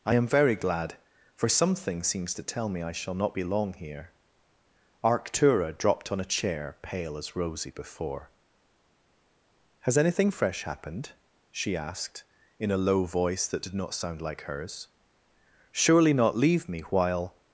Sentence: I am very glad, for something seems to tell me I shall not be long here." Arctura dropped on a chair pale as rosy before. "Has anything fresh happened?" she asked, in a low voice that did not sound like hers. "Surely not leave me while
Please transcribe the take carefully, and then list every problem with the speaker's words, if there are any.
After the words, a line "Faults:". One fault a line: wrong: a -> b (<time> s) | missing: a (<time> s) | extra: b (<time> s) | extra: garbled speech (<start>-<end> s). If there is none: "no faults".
I am very glad, for something seems to tell me I shall not be long here." Arctura dropped on a chair pale as rosy before. "Has anything fresh happened?" she asked, in a low voice that did not sound like hers. "Surely not leave me while
Faults:
no faults